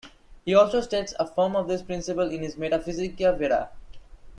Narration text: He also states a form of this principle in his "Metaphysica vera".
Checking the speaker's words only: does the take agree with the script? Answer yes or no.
yes